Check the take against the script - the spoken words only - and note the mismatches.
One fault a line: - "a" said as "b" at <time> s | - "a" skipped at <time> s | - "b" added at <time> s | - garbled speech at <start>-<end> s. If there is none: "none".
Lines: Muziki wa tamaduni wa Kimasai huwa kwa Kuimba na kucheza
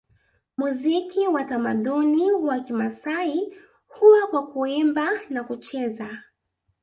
none